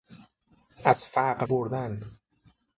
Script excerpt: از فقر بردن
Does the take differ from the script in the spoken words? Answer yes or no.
no